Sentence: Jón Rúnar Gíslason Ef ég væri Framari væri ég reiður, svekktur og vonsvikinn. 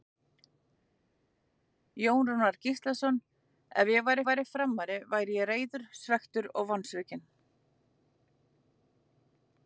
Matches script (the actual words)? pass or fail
fail